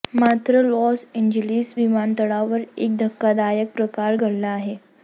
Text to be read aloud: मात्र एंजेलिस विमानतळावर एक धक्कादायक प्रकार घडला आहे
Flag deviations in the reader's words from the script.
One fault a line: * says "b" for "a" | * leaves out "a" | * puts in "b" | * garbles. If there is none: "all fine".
* puts in "लॉस"